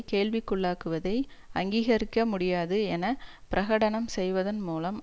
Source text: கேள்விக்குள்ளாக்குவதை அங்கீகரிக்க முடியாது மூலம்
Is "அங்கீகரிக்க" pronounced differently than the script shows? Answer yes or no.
no